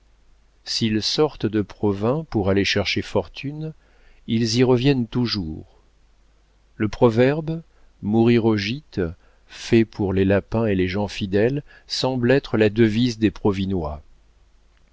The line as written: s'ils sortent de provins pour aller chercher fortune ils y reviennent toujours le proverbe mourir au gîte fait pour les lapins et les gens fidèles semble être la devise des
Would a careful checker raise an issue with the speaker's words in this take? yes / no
no